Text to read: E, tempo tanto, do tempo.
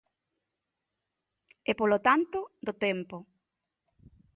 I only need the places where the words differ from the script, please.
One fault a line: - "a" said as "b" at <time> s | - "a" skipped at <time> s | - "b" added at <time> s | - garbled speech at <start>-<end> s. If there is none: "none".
- "tempo" said as "polo" at 1.8 s